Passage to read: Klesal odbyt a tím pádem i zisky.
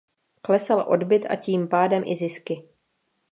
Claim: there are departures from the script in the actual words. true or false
false